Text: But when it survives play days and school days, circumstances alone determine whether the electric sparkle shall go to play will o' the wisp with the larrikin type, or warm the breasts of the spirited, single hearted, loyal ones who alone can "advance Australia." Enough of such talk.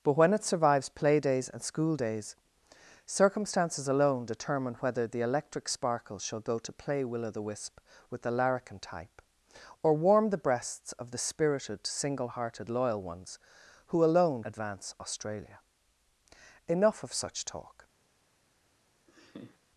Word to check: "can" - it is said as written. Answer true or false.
false